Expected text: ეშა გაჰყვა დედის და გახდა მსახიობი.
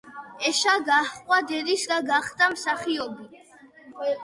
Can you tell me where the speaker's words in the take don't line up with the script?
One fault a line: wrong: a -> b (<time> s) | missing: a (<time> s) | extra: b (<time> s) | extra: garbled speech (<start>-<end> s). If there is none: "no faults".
no faults